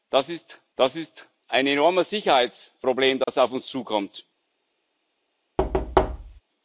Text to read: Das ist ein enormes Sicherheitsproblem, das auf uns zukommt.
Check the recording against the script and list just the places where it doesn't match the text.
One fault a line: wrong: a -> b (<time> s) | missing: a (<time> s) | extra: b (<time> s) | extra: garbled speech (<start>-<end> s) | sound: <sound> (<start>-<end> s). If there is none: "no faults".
extra: das ist (0.7 s)
sound: dropout (3.2-3.3 s)
sound: thud (5.6-6.4 s)